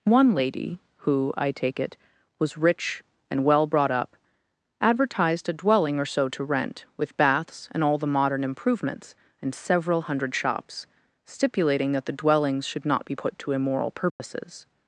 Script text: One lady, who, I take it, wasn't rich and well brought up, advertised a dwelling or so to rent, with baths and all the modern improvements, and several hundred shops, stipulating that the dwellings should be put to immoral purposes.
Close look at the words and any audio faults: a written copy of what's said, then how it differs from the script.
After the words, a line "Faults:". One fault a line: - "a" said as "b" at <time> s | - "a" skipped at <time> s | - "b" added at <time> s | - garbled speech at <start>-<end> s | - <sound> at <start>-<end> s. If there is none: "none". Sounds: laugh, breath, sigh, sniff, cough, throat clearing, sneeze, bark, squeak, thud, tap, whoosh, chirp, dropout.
One lady, who, I take it, was rich and well brought up, advertised a dwelling or so to rent, with baths and all the modern improvements, and several hundred shops, stipulating that the dwellings should not be put to immoral purposes.
Faults:
- "wasn't" said as "was" at 2.4 s
- "not" added at 12.8 s
- dropout at 14.1-14.2 s